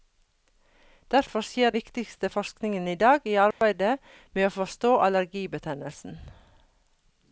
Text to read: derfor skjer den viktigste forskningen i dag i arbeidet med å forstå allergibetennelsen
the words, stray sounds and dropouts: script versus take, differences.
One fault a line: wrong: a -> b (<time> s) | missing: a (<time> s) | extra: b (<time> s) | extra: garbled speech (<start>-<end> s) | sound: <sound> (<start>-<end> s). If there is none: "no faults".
missing: den (1.7 s)
sound: dropout (3.5-3.6 s)